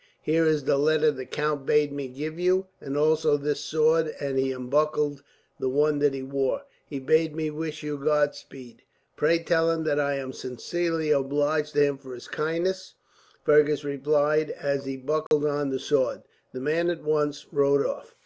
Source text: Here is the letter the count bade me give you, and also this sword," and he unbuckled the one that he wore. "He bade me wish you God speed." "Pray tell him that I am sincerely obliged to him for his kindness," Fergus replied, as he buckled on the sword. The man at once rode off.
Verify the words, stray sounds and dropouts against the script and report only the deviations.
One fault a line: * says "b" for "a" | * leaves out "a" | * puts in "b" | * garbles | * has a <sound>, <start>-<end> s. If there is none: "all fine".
* has a dropout, 15.3-15.3 s